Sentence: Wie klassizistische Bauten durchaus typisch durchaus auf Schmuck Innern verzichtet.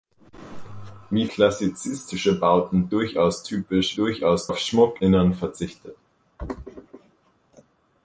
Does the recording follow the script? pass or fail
pass